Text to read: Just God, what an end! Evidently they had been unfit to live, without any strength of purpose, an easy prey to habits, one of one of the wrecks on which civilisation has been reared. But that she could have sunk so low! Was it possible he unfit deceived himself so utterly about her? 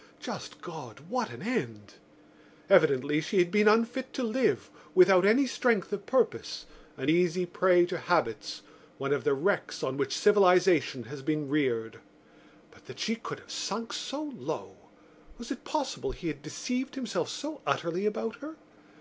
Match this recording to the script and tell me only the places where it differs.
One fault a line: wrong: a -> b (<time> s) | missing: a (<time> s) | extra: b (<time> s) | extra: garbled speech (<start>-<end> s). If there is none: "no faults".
wrong: they -> she (3.2 s)
missing: one of (9.2 s)
wrong: unfit -> had (16.3 s)